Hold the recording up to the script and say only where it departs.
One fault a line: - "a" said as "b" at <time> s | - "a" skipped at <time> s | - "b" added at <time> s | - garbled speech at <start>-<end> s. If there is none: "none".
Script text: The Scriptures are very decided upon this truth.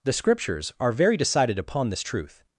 none